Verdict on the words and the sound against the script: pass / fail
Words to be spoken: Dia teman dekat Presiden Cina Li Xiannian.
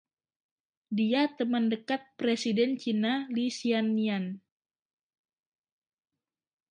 pass